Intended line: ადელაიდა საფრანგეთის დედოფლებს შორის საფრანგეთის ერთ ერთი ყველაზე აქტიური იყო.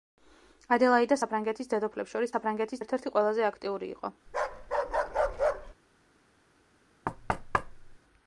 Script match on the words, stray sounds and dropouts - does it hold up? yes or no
no